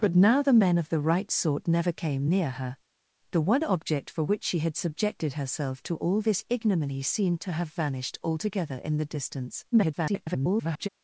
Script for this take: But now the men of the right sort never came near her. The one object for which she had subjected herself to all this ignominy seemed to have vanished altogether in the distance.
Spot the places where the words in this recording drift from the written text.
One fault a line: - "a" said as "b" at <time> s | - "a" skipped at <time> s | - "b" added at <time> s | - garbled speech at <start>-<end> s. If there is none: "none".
- garbled speech at 9.7-10.9 s